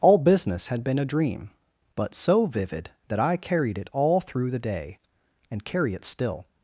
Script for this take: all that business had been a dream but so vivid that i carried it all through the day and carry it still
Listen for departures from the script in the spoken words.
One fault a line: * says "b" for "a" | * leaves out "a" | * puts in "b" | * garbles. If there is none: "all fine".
* leaves out "that"